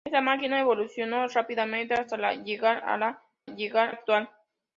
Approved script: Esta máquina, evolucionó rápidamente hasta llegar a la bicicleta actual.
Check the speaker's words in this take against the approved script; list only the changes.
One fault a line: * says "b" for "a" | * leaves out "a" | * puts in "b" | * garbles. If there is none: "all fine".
* says "llegar" for "bicicleta"